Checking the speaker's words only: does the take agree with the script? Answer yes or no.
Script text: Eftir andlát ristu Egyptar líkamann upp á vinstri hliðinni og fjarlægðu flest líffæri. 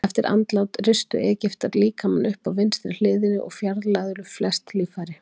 yes